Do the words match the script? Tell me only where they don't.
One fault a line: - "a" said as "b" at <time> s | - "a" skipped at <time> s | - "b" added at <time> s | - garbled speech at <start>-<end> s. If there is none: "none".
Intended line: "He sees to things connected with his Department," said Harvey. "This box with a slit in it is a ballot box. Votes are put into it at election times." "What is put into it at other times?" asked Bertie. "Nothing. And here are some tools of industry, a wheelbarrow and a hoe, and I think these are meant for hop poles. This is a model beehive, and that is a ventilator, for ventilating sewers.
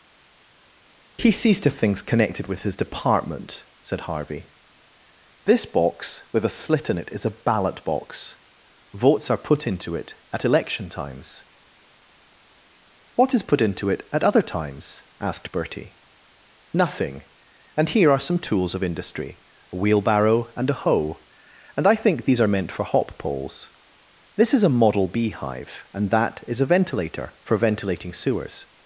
none